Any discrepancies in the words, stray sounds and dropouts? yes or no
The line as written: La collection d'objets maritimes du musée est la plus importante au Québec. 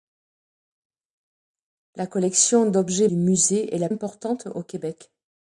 yes